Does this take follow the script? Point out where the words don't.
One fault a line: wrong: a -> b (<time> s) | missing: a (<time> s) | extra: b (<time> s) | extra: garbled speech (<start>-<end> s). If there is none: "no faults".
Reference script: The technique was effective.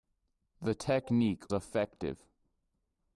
missing: was (1.4 s)